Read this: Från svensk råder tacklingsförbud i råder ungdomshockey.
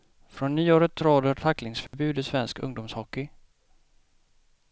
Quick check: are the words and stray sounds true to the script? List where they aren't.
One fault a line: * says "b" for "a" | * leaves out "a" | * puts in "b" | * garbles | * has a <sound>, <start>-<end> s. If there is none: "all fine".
* says "nyåret" for "svensk"
* has a dropout, 1.9-1.9 s
* says "svensk" for "råder"